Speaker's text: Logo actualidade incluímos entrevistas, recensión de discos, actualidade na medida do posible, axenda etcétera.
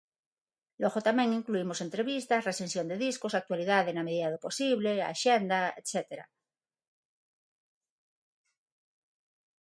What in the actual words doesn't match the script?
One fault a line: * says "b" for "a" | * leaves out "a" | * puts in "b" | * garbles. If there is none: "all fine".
* says "tamén" for "actualidade"